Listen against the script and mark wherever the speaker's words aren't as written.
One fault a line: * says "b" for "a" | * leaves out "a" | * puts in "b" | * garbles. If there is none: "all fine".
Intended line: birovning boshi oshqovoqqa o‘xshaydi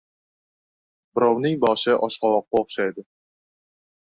all fine